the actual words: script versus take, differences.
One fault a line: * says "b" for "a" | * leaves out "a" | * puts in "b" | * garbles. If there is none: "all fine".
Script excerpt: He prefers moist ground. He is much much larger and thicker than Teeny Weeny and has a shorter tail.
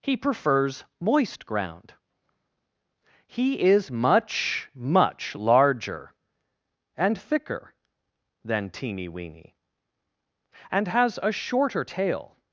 all fine